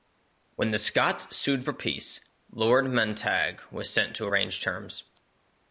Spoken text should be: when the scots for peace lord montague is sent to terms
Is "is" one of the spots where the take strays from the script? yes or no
yes